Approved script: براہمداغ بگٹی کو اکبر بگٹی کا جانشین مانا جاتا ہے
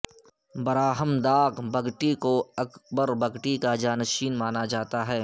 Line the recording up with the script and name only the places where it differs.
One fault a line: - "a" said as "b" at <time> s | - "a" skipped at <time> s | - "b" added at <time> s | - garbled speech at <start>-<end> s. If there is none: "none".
none